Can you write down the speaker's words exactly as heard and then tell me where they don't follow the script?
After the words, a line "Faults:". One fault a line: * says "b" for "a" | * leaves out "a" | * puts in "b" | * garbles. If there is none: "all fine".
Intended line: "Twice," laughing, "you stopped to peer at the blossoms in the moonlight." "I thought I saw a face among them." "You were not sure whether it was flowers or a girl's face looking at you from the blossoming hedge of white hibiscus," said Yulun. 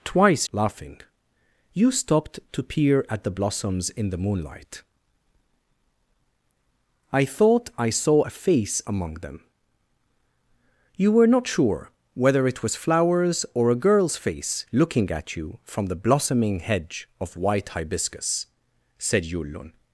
"Twice," laughing, "you stopped to peer at the blossoms in the moonlight." "I thought I saw a face among them." "You were not sure whether it was flowers or a girl's face looking at you from the blossoming hedge of white hibiscus," said Yulun.
Faults:
all fine